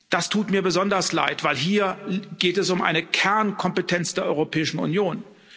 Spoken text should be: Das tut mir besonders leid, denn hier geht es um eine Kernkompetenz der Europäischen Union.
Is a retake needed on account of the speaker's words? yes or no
no